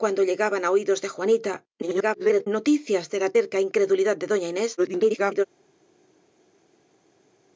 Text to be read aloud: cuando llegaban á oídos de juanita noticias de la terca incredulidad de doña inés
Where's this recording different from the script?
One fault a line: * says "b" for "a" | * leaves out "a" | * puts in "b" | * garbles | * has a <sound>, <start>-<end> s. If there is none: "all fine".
* garbles
* garbles